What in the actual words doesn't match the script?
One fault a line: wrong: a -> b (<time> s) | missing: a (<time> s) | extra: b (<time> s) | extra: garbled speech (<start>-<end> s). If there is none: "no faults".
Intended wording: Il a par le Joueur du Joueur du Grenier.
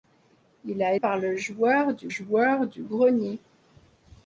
no faults